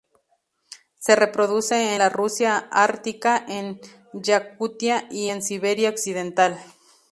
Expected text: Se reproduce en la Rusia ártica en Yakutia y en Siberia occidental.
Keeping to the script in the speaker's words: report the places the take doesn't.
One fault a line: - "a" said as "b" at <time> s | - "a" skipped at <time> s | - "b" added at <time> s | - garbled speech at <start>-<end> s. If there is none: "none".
- "en" skipped at 1.9 s